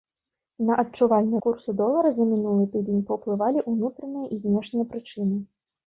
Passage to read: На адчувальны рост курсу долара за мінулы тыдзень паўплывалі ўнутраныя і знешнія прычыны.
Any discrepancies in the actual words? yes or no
yes